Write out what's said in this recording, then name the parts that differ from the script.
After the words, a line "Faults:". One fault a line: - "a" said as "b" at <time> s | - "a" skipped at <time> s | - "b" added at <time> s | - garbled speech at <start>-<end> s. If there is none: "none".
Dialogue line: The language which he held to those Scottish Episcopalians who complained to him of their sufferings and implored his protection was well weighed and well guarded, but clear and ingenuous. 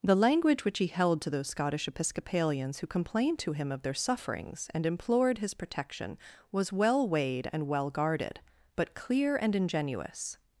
The language which he held to those Scottish Episcopalians who complained to him of their sufferings and implored his protection was well weighed and well guarded, but clear and ingenuous.
Faults:
none